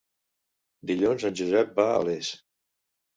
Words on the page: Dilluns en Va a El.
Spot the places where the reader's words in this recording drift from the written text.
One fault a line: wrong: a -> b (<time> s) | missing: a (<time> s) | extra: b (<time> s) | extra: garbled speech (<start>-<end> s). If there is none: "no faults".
extra: Josep (1.4 s)
wrong: El -> Les (2.1 s)